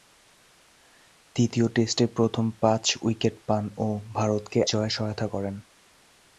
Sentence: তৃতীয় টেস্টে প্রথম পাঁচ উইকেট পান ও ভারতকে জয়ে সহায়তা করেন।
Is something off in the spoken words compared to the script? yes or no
no